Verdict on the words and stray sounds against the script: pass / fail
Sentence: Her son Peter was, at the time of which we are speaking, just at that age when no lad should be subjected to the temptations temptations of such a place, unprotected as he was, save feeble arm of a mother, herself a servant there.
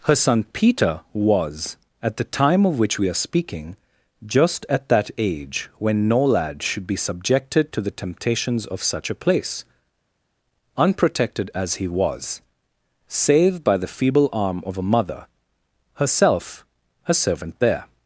fail